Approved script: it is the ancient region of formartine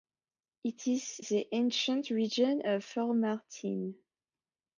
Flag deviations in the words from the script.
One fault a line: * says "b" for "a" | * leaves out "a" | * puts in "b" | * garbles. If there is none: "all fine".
all fine